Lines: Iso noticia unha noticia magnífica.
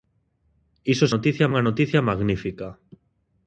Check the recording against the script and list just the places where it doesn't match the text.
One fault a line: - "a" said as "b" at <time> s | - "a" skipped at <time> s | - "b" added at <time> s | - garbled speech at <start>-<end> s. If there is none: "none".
none